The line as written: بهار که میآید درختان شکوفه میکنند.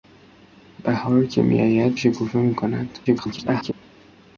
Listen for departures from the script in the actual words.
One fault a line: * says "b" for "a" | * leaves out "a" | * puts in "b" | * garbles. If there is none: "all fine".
* leaves out "درختان"
* garbles